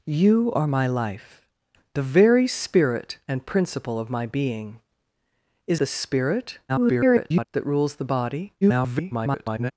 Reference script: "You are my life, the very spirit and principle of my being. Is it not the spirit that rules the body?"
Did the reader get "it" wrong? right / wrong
wrong